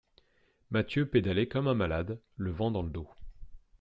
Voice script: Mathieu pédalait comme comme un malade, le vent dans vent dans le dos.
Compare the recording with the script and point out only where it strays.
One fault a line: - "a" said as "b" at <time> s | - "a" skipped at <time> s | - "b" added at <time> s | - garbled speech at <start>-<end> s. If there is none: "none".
- "comme" skipped at 1.7 s
- "vent dans" skipped at 2.8 s